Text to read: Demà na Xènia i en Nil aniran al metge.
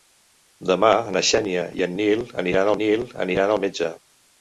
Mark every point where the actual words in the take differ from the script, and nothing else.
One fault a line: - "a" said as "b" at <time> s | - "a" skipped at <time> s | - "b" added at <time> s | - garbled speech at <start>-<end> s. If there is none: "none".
- "Nil aniran" added at 2.8 s